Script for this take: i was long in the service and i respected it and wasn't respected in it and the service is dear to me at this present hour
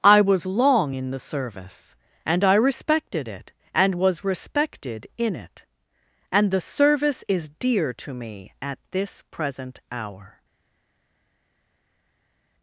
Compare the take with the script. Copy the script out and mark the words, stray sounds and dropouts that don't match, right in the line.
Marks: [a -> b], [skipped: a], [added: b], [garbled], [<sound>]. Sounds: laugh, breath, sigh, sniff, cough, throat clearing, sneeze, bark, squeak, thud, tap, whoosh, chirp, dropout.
i was long in the service and i respected it and [wasn't -> was] respected in it and the service is dear to me at this present hour